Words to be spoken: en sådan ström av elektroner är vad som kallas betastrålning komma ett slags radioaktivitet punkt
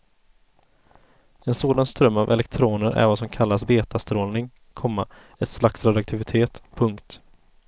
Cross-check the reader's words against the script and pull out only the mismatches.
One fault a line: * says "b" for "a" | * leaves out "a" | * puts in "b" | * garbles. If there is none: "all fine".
all fine